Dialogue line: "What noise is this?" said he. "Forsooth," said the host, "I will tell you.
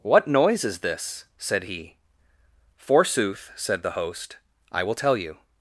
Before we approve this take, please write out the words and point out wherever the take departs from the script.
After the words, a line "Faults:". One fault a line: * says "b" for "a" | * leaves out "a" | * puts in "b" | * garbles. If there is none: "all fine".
"What noise is this?" said he. "Forsooth," said the host, "I will tell you.
Faults:
all fine